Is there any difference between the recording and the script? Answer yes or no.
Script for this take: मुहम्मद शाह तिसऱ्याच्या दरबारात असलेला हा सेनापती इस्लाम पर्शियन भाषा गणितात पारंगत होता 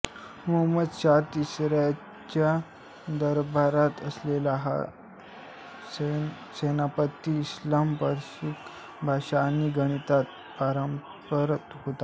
yes